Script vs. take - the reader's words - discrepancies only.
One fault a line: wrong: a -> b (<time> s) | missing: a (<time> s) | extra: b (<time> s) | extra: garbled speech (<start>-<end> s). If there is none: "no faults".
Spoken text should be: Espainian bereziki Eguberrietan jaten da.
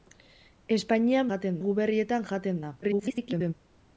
wrong: bereziki -> jaten (1.3 s)
extra: garbled speech (2.8-3.5 s)